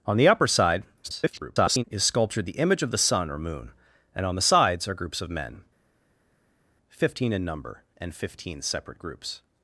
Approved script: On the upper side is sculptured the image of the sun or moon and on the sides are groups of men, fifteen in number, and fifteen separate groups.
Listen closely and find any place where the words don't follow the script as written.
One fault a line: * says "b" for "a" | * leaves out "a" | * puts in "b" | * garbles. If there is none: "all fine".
* garbles